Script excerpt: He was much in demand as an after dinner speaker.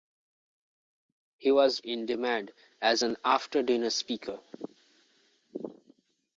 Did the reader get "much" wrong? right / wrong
wrong